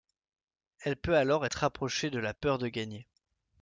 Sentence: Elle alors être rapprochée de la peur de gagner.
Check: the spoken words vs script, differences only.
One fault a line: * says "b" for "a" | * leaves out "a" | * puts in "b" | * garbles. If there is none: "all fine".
* puts in "peut"